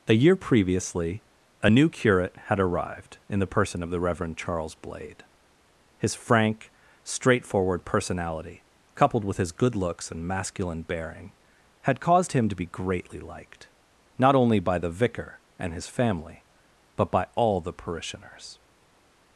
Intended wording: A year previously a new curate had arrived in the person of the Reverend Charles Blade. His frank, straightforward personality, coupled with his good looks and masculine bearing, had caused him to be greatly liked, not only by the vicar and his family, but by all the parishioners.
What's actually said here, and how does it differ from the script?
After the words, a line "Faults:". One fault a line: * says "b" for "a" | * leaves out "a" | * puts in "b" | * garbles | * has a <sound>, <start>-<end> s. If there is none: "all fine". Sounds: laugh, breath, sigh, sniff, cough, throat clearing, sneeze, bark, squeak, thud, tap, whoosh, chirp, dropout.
A year previously a new curate had arrived in the person of the Reverend Charles Blade. His frank, straightforward personality, coupled with his good looks and masculine bearing, had caused him to be greatly liked, not only by the vicar and his family, but by all the parishioners.
Faults:
all fine